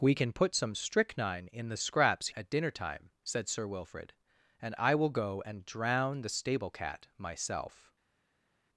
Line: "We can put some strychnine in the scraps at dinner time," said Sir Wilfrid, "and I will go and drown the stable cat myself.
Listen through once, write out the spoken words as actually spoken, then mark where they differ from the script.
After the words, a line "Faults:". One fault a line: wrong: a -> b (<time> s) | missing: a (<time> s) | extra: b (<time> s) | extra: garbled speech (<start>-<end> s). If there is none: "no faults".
"We can put some strychnine in the scraps at dinner time," said Sir Wilfrid, "and I will go and drown the stable cat myself.
Faults:
no faults